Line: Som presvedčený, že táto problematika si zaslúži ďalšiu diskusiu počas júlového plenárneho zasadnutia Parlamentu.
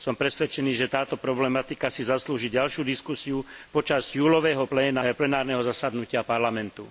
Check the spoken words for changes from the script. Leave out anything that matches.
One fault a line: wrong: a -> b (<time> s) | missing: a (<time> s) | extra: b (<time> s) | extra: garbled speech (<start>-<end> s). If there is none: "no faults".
no faults